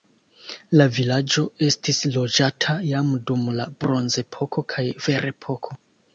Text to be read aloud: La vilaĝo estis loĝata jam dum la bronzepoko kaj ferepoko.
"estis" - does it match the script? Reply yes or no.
yes